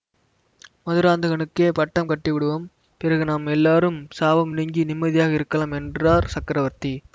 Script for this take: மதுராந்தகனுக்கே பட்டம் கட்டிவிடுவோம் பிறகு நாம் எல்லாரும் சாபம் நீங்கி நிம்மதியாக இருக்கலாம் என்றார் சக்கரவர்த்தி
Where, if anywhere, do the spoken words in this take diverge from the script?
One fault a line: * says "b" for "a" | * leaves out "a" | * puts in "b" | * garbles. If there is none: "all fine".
all fine